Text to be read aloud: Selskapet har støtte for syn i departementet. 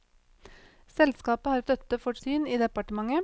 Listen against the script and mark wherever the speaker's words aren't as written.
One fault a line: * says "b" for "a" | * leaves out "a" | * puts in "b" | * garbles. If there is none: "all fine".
all fine